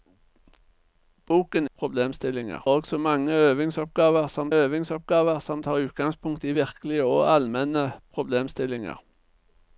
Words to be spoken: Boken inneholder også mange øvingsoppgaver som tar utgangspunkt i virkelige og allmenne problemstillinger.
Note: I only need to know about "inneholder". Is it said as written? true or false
false